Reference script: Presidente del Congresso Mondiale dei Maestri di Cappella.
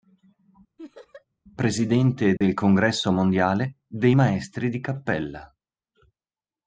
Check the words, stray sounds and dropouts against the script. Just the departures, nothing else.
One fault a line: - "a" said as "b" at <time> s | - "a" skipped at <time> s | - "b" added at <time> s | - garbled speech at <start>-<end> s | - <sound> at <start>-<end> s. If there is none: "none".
- laugh at 0.8-1.3 s
- dropout at 2.4-2.4 s